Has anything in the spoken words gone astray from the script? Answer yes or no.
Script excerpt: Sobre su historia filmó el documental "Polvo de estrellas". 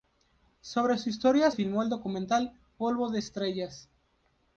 no